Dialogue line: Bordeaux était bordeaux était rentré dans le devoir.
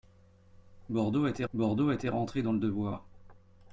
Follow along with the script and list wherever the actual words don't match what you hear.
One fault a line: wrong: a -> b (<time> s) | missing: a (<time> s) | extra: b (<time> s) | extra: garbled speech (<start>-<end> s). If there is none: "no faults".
no faults